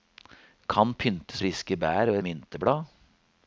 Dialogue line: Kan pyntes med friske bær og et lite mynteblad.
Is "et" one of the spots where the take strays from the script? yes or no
yes